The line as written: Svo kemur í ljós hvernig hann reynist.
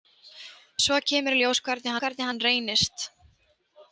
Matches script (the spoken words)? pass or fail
fail